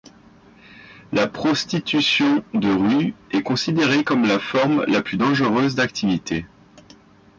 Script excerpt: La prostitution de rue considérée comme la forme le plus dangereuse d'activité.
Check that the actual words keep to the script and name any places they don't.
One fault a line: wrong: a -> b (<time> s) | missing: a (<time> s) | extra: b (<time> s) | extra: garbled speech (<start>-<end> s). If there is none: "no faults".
extra: est (3.3 s)
wrong: le -> la (4.9 s)